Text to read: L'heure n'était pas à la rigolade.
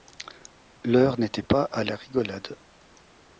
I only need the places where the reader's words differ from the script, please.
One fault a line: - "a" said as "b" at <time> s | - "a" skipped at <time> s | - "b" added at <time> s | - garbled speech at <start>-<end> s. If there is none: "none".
none